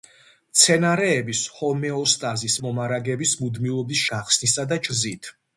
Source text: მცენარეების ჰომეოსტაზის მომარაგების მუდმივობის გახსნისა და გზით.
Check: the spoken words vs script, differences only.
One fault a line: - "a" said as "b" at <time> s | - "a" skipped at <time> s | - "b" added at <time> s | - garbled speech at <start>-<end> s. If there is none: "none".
none